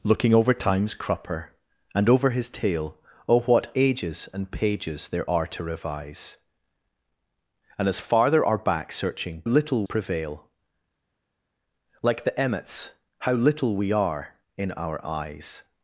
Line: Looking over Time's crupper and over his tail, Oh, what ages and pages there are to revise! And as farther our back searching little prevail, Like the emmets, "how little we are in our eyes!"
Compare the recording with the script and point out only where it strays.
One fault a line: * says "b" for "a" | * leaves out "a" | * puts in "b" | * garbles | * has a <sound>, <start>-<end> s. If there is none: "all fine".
all fine